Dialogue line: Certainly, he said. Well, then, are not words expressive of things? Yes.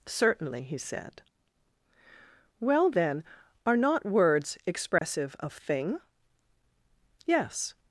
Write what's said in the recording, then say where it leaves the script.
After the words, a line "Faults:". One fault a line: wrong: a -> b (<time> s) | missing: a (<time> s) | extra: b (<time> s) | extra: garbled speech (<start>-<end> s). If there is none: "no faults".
Certainly, he said. Well, then, are not words expressive of thing? Yes.
Faults:
wrong: things -> thing (5.5 s)